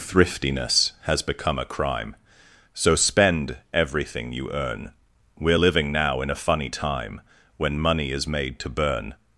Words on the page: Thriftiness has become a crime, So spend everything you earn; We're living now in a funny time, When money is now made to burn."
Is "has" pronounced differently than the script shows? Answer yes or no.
no